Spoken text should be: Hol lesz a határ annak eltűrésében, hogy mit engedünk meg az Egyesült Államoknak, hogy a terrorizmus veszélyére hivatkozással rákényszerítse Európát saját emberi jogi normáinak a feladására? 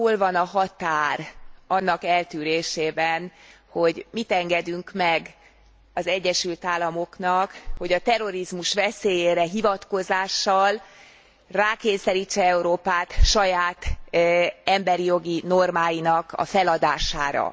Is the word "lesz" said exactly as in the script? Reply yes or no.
no